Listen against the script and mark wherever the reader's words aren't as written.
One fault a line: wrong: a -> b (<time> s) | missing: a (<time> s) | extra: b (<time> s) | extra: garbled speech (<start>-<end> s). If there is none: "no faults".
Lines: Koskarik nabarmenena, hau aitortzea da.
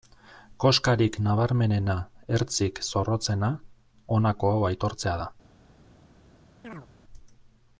extra: ertzik zorrotzena honako (2.4 s)